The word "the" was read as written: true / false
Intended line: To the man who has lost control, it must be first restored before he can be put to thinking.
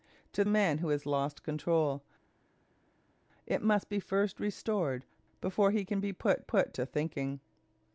false